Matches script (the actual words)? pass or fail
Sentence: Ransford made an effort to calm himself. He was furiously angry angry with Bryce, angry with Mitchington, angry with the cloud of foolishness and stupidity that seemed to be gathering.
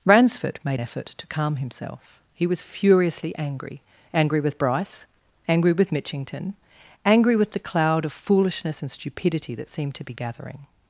fail